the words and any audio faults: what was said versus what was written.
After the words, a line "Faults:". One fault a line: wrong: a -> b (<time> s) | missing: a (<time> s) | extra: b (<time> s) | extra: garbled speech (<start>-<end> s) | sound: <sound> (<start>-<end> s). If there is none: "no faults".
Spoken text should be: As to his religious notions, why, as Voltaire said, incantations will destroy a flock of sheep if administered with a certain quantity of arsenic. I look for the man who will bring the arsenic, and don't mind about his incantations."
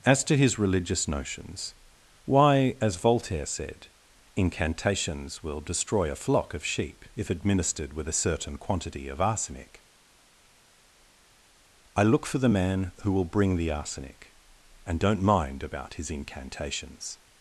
As to his religious notions, why, as Voltaire said, incantations will destroy a flock of sheep if administered with a certain quantity of arsenic. I look for the man who will bring the arsenic, and don't mind about his incantations."
Faults:
no faults